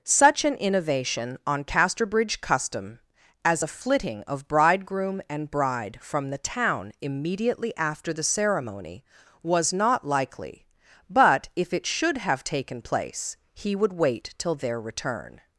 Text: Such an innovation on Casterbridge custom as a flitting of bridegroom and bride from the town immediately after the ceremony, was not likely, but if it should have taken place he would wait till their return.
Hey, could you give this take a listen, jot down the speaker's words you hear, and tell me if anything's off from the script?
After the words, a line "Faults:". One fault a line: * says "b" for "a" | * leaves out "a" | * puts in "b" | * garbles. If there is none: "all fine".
Such an innovation on Casterbridge custom as a flitting of bridegroom and bride from the town immediately after the ceremony, was not likely, but if it should have taken place he would wait till their return.
Faults:
all fine